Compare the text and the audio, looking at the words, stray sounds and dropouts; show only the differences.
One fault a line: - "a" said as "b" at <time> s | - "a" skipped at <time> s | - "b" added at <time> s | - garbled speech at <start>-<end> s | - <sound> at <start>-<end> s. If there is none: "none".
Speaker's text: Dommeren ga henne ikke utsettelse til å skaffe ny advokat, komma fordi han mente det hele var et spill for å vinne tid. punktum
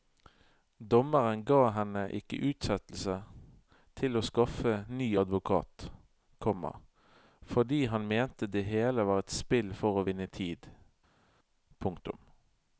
none